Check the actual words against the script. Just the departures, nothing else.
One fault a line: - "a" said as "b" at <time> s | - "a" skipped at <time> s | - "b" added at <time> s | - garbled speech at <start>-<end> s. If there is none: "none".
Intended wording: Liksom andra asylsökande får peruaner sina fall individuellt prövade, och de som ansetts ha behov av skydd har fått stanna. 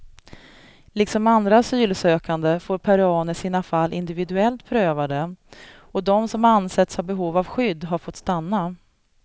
none